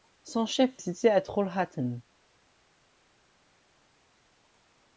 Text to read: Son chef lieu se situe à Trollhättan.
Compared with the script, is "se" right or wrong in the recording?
wrong